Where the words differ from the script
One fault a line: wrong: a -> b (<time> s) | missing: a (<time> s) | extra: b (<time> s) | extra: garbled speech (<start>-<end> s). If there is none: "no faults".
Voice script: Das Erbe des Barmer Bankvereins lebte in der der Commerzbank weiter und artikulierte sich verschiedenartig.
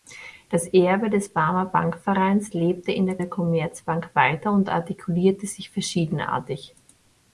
no faults